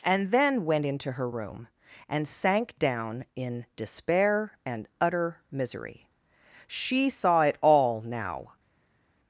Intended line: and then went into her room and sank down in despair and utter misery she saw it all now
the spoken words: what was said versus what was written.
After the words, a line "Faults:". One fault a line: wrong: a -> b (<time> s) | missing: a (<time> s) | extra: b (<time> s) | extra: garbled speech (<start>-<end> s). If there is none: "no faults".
and then went into her room and sank down in despair and utter misery she saw it all now
Faults:
no faults